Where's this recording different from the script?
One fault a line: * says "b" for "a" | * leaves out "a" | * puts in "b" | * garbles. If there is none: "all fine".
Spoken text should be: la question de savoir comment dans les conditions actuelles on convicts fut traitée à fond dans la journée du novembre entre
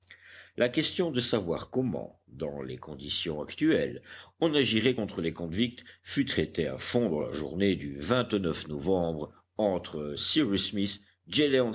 * puts in "agirait contre les"